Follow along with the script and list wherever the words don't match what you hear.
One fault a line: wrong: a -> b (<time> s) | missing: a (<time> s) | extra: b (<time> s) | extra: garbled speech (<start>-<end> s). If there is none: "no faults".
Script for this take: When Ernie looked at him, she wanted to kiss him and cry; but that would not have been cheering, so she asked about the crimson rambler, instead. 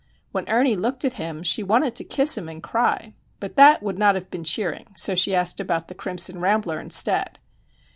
no faults